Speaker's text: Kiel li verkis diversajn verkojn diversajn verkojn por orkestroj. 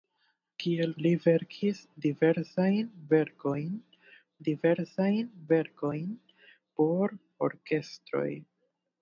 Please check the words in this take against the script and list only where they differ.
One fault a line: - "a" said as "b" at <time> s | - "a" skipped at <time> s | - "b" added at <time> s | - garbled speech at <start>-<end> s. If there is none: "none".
none